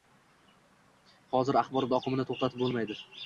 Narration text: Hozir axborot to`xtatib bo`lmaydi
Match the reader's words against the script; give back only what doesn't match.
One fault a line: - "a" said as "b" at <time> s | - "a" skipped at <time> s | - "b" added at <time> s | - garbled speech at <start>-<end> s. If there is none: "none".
- "oqimini" added at 2.0 s